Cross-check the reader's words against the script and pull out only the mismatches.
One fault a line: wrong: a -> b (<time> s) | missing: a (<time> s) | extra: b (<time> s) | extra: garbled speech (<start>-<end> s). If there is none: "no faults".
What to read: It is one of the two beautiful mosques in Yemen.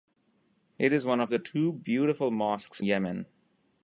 missing: in (2.8 s)